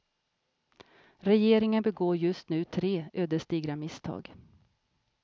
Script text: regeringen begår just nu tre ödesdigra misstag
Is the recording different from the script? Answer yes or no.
no